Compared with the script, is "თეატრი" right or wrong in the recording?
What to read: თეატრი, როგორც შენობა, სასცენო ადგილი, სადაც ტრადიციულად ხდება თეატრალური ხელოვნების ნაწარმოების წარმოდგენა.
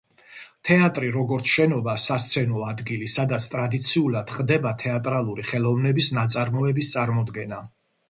right